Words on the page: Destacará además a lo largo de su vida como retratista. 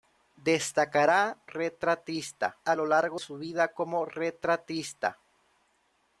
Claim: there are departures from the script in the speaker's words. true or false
true